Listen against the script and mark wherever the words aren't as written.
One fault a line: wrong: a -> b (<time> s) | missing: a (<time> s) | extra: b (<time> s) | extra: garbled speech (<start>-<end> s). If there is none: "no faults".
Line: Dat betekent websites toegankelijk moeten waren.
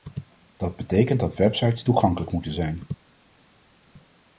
extra: dat (1.2 s)
wrong: waren -> zijn (2.5 s)